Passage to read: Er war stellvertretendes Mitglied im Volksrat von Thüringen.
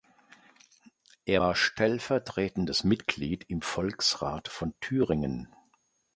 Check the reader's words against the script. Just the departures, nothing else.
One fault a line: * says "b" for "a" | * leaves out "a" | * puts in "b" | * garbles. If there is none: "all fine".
all fine